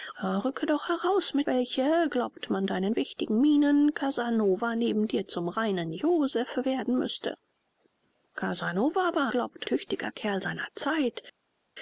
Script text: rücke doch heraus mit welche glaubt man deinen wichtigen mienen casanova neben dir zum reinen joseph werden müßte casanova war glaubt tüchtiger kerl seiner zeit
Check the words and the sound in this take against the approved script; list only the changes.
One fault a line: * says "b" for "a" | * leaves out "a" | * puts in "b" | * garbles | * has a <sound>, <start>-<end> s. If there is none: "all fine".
all fine